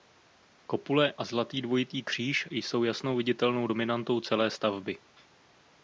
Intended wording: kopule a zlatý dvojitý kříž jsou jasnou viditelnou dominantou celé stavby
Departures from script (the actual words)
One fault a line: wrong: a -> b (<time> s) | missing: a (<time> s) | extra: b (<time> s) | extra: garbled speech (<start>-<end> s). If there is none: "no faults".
no faults